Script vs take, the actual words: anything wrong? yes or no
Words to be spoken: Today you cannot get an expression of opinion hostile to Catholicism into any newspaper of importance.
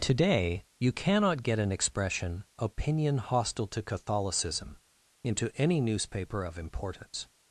yes